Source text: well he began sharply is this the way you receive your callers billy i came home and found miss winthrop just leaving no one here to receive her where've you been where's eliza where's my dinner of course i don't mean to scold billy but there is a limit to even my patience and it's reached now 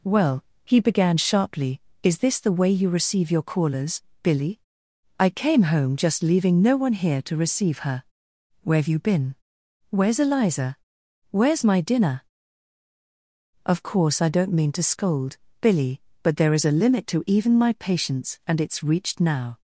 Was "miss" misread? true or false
true